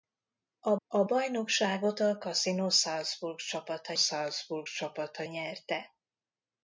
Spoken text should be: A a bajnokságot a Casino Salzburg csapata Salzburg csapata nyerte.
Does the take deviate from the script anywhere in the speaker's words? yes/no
no